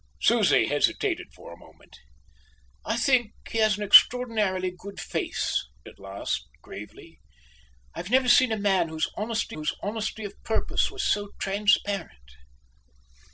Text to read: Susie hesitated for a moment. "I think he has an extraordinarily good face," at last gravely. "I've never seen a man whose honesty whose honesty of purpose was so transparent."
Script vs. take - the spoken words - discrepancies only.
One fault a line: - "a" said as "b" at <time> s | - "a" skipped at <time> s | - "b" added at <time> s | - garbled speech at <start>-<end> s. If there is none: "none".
none